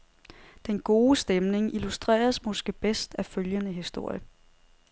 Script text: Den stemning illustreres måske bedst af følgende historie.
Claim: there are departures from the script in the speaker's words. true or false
true